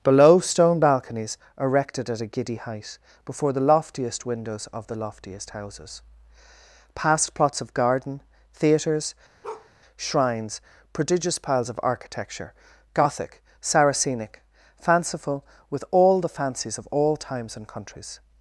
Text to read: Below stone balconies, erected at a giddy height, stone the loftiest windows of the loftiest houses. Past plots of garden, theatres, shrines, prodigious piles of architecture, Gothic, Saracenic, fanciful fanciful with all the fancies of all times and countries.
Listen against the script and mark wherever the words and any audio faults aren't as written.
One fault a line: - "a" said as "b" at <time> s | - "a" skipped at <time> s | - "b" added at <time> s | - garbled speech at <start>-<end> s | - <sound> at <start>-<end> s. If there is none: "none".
- "stone" said as "before" at 3.2 s
- bark at 9.4-9.7 s
- "fanciful" skipped at 15.4 s